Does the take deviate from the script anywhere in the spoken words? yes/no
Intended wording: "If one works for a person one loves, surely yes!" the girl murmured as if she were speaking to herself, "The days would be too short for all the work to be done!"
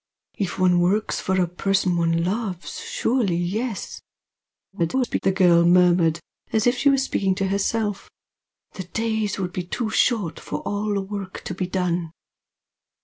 yes